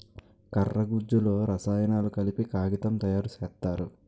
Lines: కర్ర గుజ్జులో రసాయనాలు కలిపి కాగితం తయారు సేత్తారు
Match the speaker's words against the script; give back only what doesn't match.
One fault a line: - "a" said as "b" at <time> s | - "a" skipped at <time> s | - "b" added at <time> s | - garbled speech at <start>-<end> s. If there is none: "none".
none